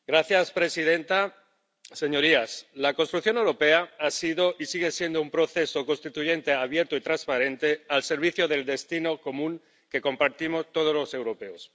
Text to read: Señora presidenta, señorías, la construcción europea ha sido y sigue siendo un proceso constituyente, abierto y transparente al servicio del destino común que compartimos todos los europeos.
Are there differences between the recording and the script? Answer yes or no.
no